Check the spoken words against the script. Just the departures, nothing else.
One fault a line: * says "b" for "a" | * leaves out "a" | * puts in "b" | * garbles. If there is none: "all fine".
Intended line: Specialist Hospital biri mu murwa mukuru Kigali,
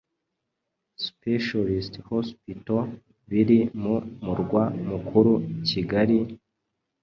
all fine